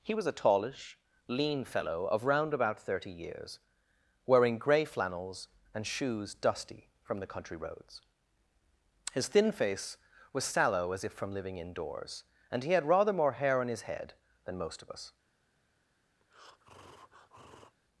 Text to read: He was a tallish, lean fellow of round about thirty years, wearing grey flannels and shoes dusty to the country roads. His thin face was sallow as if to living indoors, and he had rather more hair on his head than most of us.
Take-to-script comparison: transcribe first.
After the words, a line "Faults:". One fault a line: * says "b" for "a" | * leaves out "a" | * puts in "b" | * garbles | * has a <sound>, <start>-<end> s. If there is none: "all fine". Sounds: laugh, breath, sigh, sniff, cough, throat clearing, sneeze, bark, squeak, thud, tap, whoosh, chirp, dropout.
He was a tallish, lean fellow of round about thirty years, wearing grey flannels and shoes dusty from the country roads. His thin face was sallow as if from living indoors, and he had rather more hair on his head than most of us.
Faults:
* says "from" for "to"
* says "from" for "to"
* has a breath, 16.2-17.8 s